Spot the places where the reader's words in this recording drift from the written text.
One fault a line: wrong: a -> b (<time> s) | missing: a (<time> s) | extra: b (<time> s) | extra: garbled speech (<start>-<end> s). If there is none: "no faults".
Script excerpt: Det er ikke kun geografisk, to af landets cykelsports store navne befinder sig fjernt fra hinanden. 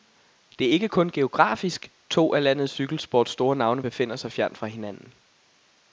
no faults